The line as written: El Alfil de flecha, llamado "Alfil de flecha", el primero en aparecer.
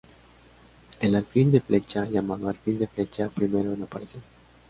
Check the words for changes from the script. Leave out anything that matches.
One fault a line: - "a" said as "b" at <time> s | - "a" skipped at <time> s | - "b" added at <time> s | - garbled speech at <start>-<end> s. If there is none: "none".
none